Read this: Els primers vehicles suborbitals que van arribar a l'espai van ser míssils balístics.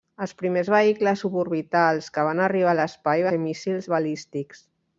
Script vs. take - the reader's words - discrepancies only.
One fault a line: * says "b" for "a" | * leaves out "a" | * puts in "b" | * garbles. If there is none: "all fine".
* leaves out "van"